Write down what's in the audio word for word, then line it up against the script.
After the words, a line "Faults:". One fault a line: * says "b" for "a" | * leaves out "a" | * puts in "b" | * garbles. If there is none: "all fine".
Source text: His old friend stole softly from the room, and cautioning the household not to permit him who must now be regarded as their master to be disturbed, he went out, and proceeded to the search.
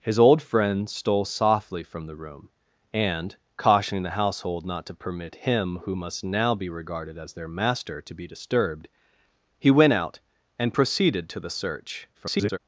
His old friend stole softly from the room, and cautioning the household not to permit him who must now be regarded as their master to be disturbed, he went out, and proceeded to the search. [garbled]
Faults:
* garbles